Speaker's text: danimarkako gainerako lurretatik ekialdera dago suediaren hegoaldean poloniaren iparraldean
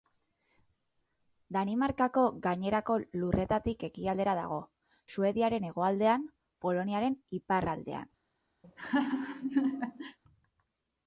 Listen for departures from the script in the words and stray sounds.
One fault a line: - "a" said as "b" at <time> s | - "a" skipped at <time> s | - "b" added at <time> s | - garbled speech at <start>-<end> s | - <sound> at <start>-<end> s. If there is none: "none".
- laugh at 8.6-10.2 s